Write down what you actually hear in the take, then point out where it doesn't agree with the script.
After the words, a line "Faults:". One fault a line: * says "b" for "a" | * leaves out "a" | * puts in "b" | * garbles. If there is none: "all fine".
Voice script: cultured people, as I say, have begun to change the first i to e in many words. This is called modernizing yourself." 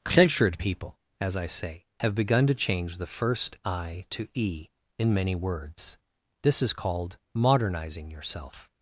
cultured people, as I say, have begun to change the first i to e in many words. This is called modernizing yourself."
Faults:
all fine